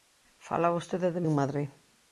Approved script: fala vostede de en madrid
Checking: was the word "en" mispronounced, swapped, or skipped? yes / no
no